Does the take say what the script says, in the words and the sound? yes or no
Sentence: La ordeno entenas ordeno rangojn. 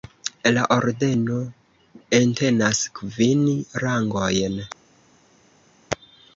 no